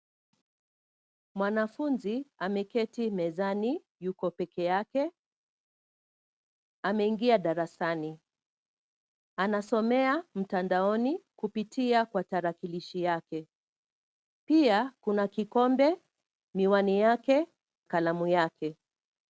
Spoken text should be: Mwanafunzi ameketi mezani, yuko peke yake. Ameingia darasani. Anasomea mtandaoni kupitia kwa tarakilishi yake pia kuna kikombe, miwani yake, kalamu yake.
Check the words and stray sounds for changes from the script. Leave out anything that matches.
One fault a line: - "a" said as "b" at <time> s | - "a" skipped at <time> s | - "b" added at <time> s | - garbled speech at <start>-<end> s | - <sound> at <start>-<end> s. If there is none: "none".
none